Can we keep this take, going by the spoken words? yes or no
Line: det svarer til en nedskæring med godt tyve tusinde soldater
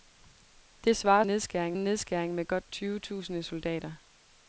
no